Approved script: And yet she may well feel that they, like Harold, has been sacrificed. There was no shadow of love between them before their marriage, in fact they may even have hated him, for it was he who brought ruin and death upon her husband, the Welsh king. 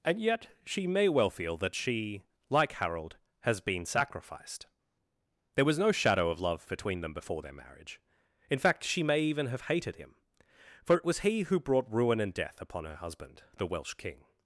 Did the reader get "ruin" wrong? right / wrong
right